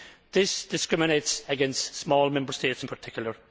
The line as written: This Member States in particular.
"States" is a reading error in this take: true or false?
false